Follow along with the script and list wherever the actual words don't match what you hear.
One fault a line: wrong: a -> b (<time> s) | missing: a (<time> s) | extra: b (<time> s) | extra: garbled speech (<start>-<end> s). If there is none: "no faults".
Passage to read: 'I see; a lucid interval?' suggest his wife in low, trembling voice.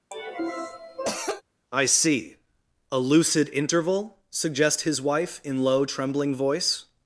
no faults